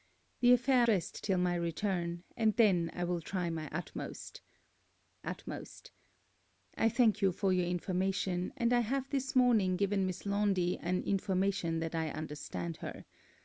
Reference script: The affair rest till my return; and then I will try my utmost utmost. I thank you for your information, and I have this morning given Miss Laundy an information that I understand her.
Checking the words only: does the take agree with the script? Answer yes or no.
yes